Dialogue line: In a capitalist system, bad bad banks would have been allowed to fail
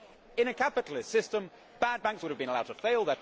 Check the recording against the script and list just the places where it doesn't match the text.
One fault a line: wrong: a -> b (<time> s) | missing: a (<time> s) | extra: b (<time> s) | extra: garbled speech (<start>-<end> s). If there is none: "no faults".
missing: bad (2.0 s)